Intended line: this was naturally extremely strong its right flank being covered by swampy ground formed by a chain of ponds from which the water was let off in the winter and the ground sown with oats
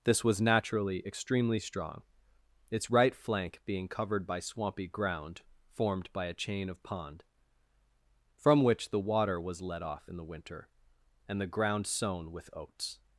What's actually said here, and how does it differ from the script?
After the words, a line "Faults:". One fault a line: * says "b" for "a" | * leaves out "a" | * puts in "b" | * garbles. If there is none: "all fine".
this was naturally extremely strong its right flank being covered by swampy ground formed by a chain of pond from which the water was let off in the winter and the ground sown with oats
Faults:
* says "pond" for "ponds"